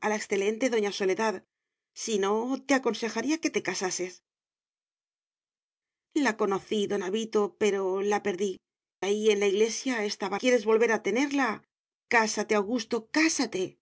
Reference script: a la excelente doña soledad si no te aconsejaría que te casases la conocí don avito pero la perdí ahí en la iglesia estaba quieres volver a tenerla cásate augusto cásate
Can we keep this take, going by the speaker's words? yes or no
yes